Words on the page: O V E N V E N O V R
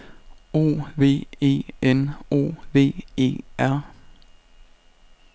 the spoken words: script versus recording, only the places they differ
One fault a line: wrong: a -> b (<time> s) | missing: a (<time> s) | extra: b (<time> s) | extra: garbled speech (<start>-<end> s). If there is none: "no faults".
extra: O (2.3 s)
missing: N O V (3.4 s)